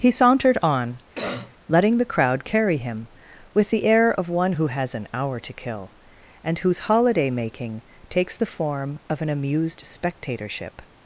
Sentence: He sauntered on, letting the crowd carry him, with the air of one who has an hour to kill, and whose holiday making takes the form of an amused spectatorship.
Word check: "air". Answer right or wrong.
right